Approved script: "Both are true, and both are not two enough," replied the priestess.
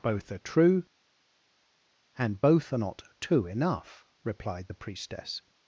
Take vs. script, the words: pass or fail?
pass